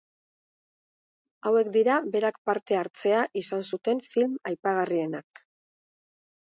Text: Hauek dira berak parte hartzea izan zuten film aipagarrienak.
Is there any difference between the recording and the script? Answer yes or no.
no